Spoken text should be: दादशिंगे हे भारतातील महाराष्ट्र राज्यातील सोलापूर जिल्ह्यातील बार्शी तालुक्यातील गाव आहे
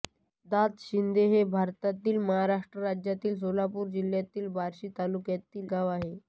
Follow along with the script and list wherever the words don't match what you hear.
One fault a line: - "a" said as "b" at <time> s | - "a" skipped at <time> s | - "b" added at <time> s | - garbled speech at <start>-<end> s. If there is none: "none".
none